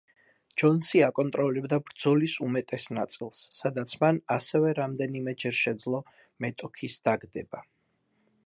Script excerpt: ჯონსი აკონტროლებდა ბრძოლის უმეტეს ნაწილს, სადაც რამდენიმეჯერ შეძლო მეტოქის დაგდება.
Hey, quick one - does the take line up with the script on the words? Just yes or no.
no